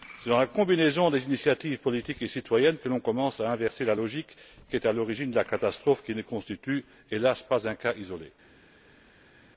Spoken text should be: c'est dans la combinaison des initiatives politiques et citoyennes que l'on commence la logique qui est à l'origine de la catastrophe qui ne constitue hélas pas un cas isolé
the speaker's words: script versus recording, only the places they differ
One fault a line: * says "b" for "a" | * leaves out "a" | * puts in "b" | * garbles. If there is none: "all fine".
* puts in "à inverser"